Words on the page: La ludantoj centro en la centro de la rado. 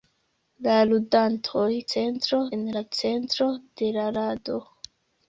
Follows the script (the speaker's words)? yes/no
yes